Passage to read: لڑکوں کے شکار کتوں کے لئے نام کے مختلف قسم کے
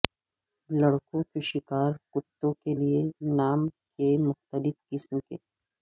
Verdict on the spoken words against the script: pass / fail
pass